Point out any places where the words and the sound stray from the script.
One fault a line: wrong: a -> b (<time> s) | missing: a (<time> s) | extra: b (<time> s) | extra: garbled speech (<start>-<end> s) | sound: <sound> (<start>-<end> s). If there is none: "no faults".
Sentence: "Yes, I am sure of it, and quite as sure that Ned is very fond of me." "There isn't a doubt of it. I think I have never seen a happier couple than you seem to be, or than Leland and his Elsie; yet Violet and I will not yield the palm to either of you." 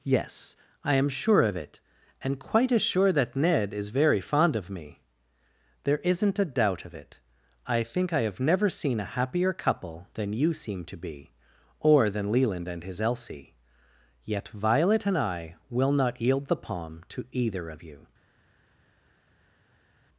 no faults